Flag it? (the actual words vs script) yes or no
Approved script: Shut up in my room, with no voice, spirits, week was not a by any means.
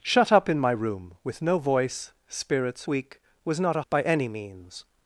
no